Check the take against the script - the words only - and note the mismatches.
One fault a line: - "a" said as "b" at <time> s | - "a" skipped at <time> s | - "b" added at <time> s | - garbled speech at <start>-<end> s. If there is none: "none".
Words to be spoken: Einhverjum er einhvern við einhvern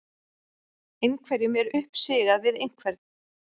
- "einhvern" said as "uppsigað" at 1.8 s